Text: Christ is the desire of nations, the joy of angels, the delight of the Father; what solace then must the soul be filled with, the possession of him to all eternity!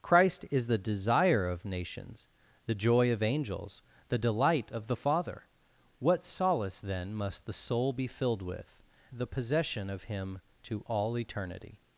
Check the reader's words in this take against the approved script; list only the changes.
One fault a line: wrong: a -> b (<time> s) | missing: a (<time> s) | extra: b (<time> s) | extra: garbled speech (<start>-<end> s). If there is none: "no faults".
no faults